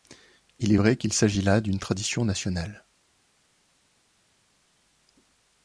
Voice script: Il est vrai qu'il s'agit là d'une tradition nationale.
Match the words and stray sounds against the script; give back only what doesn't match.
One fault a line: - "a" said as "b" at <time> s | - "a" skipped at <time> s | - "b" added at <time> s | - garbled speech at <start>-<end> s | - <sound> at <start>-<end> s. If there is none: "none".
none